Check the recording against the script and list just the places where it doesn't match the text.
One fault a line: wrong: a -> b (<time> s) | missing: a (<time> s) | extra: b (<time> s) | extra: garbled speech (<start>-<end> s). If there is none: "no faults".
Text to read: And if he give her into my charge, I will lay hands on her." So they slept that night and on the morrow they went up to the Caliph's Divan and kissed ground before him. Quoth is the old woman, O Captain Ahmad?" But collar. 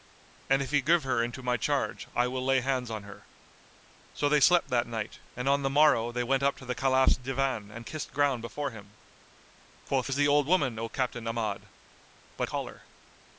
no faults